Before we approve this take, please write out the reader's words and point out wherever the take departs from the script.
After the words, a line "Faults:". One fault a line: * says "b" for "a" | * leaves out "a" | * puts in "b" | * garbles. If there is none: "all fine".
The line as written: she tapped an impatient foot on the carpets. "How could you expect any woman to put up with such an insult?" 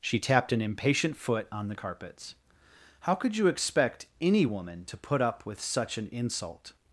she tapped an impatient foot on the carpets. "How could you expect any woman to put up with such an insult?"
Faults:
all fine